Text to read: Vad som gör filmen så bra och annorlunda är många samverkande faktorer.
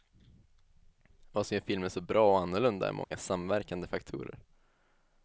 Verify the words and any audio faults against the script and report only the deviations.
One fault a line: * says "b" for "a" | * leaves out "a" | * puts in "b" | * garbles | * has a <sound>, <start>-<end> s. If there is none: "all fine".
* has a dropout, 3.0-3.1 s